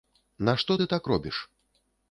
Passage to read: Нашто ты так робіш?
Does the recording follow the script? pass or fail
pass